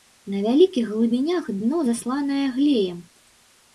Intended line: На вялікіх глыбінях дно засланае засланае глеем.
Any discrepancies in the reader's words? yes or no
yes